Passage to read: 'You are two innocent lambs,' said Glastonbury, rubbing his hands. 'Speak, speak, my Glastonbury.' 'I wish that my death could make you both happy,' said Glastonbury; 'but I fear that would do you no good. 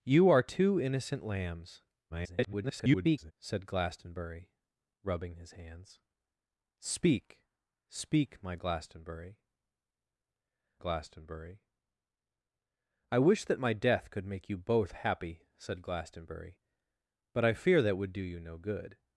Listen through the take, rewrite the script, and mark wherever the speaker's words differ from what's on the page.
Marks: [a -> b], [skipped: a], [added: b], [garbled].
'You are two innocent lambs,' [garbled] said Glastonbury, rubbing his hands. 'Speak, speak, my Glastonbury.' [added: Glastonbury] 'I wish that my death could make you both happy,' said Glastonbury; 'but I fear that would do you no good.